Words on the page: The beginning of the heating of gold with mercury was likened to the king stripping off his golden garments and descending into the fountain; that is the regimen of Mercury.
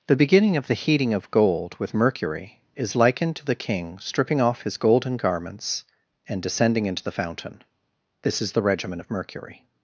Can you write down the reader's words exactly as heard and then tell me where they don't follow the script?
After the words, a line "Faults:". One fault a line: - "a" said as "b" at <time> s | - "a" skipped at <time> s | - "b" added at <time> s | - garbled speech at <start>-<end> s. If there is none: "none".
The beginning of the heating of gold with mercury is likened to the king stripping off his golden garments and descending into the fountain; this is the regimen of Mercury.
Faults:
- "was" said as "is" at 2.8 s
- "that" said as "this" at 8.2 s